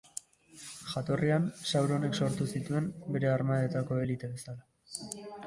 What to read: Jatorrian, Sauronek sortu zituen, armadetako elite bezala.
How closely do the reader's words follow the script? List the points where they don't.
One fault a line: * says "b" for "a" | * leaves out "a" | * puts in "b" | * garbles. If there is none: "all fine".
* puts in "bere"